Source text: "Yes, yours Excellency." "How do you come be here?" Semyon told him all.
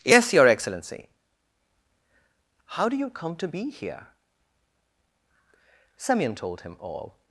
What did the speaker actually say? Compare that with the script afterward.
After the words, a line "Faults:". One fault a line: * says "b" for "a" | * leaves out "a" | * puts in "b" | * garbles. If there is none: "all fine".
"Yes, your Excellency." "How do you come to be here?" Semyon told him all.
Faults:
* says "your" for "yours"
* puts in "to"